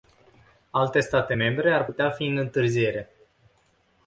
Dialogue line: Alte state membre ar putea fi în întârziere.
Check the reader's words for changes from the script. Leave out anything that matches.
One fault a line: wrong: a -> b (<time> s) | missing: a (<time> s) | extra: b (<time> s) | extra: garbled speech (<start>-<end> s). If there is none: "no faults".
no faults